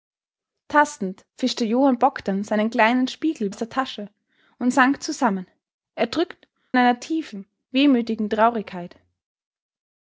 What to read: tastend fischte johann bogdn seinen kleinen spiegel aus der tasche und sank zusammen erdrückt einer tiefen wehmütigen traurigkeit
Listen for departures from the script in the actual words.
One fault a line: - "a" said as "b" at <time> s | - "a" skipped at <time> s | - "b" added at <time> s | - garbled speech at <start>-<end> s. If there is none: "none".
none